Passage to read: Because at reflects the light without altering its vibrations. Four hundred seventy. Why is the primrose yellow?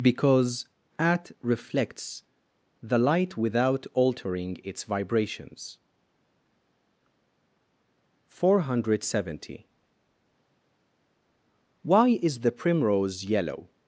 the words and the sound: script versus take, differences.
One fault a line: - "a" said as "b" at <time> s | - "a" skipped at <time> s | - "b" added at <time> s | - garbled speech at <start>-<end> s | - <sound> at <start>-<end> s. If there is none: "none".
none